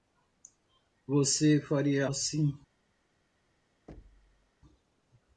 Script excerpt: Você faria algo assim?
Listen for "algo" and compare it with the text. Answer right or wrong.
wrong